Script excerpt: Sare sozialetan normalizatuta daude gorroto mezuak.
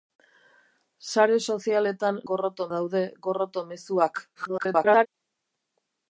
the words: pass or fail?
fail